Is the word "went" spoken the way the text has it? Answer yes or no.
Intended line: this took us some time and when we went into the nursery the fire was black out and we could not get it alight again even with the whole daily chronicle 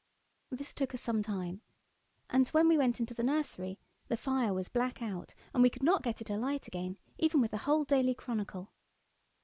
yes